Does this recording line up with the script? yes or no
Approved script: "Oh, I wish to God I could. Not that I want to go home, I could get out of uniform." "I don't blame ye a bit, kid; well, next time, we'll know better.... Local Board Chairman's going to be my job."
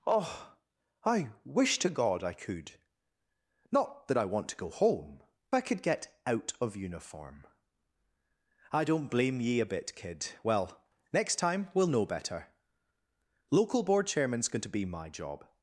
yes